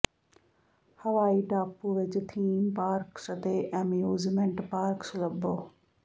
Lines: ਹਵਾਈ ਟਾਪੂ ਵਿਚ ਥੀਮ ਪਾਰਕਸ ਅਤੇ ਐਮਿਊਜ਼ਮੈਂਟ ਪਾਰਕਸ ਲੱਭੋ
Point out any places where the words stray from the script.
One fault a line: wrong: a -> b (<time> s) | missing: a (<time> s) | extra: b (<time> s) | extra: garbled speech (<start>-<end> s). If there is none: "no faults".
no faults